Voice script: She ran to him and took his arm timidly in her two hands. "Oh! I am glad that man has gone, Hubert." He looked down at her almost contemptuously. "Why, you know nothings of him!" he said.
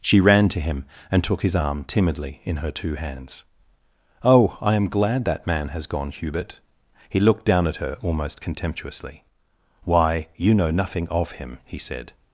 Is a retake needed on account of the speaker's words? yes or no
yes